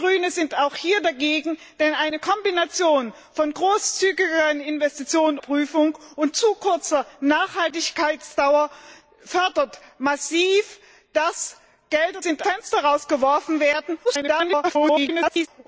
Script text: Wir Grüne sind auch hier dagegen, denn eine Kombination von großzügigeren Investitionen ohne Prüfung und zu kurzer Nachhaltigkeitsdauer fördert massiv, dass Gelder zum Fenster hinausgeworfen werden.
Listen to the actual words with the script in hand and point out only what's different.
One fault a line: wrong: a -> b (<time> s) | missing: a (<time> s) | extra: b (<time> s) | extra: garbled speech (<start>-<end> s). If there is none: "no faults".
missing: ohne (5.4 s)
wrong: zum -> sind (12.2 s)
extra: garbled speech (14.0-15.5 s)